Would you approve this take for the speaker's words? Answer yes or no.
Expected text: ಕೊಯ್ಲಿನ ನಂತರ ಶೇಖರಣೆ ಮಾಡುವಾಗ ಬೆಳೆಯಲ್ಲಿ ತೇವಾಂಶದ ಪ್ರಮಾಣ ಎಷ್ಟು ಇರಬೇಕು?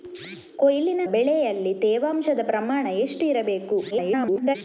no